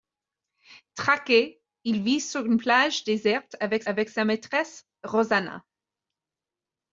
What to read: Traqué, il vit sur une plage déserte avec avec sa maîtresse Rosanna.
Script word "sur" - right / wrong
right